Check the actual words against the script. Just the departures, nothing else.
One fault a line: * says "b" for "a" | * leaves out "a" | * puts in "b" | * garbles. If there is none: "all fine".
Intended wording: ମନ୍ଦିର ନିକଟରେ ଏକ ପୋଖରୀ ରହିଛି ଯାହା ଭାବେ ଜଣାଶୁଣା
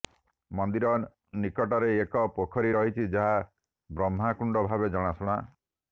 * puts in "ବ୍ରହ୍ମାକୁଣ୍ଡ"